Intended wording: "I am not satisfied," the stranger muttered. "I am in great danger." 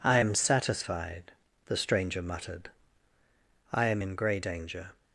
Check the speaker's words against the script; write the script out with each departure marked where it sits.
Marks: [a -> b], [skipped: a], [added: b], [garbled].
"I am [skipped: not] satisfied," the stranger muttered. "I am in [great -> grey] danger."